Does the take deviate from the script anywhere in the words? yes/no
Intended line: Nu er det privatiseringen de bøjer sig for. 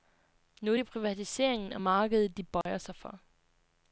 yes